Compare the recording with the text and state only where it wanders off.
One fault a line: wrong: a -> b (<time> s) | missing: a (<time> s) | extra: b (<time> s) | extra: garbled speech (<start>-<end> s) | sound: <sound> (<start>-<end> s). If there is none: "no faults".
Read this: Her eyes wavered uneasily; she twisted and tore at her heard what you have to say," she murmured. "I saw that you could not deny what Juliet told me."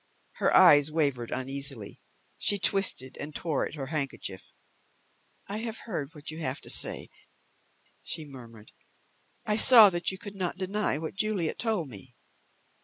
extra: handkerchief I have (3.9 s)